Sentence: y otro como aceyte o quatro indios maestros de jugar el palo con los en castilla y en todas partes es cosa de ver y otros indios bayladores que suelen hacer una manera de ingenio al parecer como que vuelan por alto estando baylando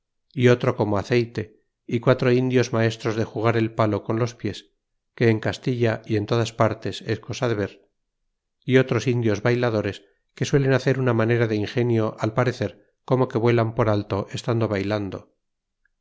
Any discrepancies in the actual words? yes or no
yes